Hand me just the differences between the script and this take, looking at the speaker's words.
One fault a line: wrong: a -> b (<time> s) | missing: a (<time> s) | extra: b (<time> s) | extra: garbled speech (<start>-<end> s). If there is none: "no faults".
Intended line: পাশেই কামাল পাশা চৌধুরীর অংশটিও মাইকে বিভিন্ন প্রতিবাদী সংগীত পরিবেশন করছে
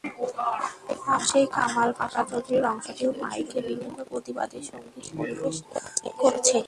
no faults